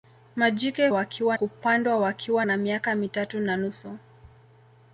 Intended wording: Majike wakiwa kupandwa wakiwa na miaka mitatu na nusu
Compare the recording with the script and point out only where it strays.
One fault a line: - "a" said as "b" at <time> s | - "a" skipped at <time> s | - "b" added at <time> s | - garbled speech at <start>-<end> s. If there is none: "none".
none